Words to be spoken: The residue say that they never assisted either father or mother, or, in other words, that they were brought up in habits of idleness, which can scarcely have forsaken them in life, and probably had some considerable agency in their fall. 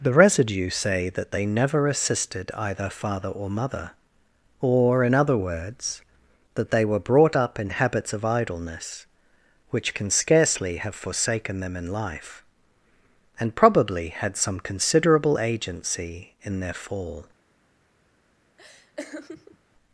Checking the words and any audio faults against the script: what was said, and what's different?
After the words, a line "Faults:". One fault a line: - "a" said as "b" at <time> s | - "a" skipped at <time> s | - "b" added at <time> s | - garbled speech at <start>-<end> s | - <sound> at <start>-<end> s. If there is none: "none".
The residue say that they never assisted either father or mother, or, in other words, that they were brought up in habits of idleness, which can scarcely have forsaken them in life, and probably had some considerable agency in their fall.
Faults:
- laugh at 18.6-19.6 s